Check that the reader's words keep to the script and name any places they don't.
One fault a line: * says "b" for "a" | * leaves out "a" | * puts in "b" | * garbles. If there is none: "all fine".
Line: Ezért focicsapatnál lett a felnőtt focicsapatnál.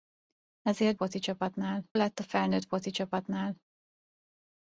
all fine